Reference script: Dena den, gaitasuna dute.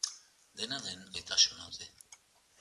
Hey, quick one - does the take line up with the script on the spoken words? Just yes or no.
yes